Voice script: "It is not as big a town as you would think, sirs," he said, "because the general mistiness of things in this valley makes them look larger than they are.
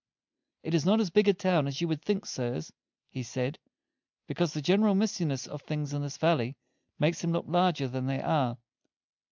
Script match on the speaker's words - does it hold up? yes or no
yes